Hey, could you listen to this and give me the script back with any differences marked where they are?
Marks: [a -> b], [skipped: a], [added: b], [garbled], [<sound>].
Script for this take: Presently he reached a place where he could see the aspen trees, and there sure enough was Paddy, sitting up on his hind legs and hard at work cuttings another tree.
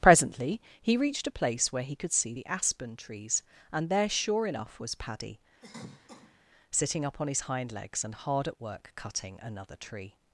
Presently he reached a place where he could see the aspen trees, and there sure enough was Paddy, [cough] sitting up on his hind legs and hard at work [cuttings -> cutting] another tree.